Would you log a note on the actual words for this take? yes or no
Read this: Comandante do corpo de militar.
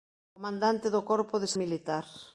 no